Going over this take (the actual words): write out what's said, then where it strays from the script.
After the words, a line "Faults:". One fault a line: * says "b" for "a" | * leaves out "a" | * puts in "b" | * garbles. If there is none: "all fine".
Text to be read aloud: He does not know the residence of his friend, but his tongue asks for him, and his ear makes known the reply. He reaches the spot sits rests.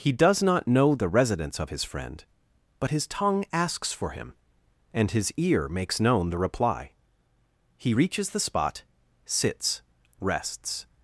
He does not know the residence of his friend, but his tongue asks for him, and his ear makes known the reply. He reaches the spot sits rests.
Faults:
all fine